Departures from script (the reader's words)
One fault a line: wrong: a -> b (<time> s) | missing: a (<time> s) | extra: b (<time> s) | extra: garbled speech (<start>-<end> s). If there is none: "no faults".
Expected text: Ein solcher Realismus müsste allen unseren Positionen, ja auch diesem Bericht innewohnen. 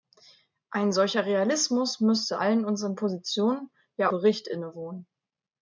missing: auch diesem (4.1 s)